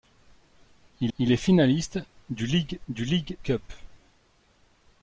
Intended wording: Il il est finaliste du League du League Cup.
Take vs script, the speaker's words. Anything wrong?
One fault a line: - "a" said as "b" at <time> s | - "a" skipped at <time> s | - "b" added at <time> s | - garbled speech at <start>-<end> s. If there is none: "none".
none